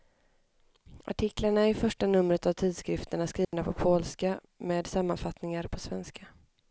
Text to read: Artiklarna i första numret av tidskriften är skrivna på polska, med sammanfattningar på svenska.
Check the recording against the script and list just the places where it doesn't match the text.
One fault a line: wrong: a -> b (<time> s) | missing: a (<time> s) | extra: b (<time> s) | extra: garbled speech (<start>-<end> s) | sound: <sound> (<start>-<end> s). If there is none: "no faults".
sound: dropout (3.4-3.5 s)